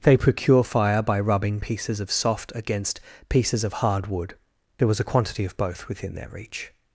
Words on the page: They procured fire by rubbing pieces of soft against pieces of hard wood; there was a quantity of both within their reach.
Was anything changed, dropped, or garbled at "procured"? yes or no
yes